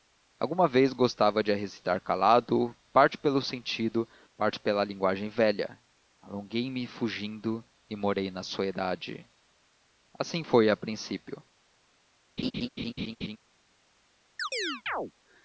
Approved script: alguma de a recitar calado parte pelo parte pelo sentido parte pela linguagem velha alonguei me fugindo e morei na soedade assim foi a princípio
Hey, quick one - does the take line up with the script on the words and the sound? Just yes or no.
no